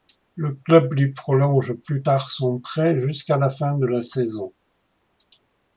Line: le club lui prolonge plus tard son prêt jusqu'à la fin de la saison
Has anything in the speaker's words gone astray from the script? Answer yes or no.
no